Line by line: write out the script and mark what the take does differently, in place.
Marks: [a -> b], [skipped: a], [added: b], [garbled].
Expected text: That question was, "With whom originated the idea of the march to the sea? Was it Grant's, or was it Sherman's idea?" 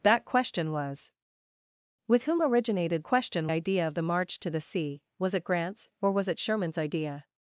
That question was, "With whom originated [the -> question] idea of the march to the sea? Was it Grant's, or was it Sherman's idea?"